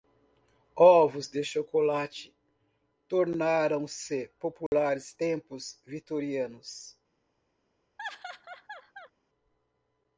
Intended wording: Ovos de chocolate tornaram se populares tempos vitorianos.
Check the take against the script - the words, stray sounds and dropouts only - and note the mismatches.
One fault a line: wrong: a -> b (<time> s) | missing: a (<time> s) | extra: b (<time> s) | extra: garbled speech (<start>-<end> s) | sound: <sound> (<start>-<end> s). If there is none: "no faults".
sound: dropout (4.7-4.7 s)
sound: laugh (8.0-9.1 s)